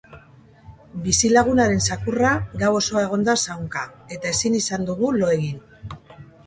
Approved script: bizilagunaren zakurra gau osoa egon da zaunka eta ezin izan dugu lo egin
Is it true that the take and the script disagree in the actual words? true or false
false